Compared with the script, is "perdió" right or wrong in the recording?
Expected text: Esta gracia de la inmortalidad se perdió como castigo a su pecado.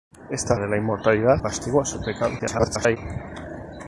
wrong